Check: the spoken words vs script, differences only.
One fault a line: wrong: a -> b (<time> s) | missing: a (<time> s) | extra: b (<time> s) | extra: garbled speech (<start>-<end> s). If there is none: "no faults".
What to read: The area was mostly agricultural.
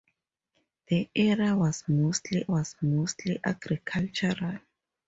extra: was mostly (2.5 s)